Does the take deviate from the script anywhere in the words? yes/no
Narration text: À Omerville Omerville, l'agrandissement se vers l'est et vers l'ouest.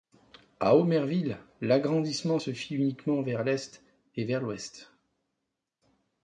yes